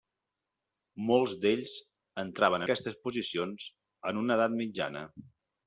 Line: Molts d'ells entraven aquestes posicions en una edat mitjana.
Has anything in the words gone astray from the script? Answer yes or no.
no